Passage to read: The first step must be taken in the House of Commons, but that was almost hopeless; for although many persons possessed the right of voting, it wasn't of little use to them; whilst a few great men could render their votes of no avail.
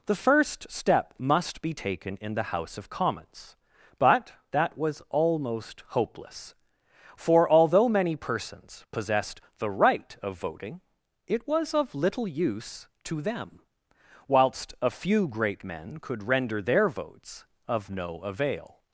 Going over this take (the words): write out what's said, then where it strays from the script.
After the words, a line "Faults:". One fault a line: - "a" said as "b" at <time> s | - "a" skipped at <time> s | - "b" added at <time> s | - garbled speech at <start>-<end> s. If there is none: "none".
The first step must be taken in the House of Commons, but that was almost hopeless; for although many persons possessed the right of voting, it was of little use to them; whilst a few great men could render their votes of no avail.
Faults:
- "wasn't" said as "was" at 11.5 s